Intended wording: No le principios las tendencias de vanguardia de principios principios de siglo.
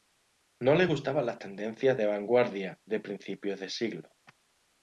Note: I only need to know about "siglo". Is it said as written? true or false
true